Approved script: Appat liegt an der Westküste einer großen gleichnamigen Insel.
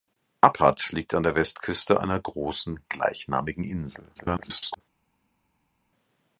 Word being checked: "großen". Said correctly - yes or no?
yes